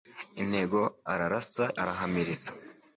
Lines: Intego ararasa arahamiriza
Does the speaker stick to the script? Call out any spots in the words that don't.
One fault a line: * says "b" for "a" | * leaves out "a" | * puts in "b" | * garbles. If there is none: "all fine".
all fine